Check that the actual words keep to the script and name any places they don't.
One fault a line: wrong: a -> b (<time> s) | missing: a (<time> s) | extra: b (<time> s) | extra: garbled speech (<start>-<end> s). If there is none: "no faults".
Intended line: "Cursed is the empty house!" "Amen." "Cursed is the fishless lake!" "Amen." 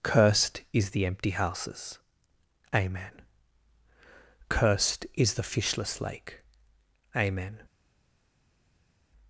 wrong: house -> houses (1.3 s)